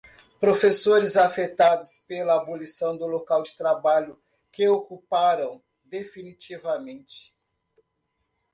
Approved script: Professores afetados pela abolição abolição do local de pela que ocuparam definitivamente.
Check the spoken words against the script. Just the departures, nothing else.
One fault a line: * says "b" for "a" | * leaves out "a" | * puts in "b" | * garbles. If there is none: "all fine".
* leaves out "abolição"
* says "trabalho" for "pela"